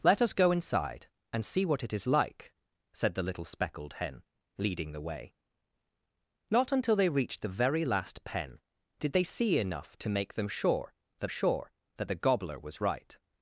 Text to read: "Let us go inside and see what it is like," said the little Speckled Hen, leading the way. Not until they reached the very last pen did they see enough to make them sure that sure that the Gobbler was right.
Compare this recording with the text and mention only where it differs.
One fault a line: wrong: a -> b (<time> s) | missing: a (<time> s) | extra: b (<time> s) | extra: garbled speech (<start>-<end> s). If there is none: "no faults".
no faults